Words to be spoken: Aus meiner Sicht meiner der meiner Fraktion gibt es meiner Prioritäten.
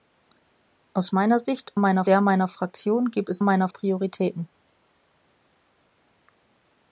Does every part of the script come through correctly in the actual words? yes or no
yes